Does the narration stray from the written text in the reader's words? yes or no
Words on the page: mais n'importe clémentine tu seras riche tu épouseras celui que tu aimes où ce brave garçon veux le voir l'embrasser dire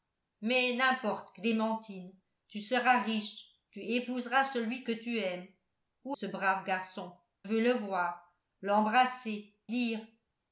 no